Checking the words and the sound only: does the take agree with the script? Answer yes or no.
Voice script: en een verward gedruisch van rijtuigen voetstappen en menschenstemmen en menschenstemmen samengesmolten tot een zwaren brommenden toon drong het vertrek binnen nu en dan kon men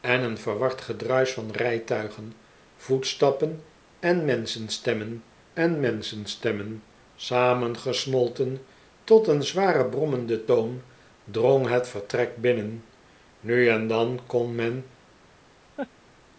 no